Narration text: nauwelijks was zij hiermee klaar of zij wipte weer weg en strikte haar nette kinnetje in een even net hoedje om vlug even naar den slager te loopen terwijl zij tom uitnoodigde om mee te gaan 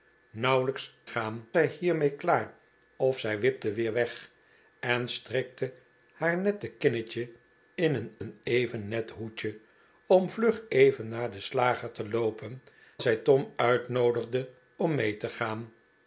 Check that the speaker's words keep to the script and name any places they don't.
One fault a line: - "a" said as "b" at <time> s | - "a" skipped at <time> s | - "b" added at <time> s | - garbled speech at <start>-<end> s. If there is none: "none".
- "was" said as "gaan" at 1.0 s
- "een" added at 8.2 s
- "terwijl" skipped at 12.6 s